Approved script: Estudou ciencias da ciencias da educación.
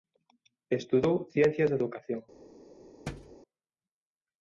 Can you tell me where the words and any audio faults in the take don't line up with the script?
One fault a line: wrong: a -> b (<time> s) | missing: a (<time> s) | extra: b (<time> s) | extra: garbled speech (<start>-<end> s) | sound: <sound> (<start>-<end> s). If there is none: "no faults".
missing: ciencias da (1.8 s)
sound: thud (3.1-3.4 s)